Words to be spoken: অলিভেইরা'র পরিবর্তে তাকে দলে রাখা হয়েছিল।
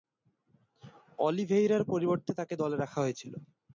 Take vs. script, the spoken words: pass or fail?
pass